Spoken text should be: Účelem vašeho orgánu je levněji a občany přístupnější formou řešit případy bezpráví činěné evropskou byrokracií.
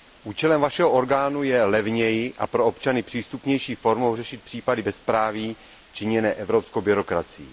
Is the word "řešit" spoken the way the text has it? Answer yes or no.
yes